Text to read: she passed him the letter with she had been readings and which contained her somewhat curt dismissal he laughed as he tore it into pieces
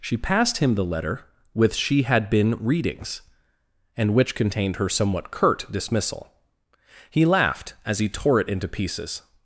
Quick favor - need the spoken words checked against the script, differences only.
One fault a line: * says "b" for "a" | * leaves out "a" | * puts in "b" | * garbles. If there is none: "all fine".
all fine